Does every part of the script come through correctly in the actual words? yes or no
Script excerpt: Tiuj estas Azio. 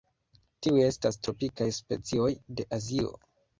no